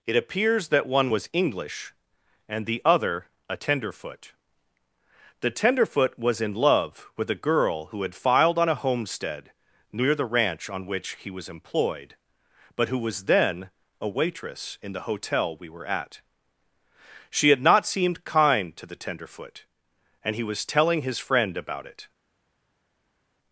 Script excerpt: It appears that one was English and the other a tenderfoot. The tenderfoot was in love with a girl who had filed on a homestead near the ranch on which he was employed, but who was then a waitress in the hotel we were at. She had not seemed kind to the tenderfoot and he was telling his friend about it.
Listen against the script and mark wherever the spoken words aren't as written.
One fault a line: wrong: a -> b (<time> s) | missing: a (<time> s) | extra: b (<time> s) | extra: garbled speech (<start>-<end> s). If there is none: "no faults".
no faults